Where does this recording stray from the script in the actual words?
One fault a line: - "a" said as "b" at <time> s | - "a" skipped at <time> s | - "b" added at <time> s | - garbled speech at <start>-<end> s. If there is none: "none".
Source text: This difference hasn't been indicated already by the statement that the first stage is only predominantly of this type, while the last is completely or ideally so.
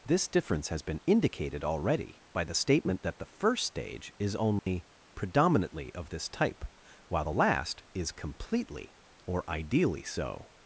- "hasn't" said as "has" at 0.7 s